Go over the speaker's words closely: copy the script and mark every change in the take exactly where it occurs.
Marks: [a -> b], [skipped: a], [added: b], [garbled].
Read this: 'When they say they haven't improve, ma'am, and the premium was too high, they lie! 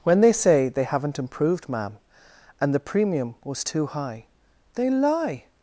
'When they say they haven't [improve, -> improved] ma'am, and the premium was too high, they lie!